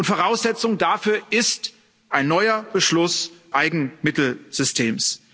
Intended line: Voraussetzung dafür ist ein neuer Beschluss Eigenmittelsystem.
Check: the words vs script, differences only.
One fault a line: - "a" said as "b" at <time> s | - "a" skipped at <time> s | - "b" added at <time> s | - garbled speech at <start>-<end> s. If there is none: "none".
none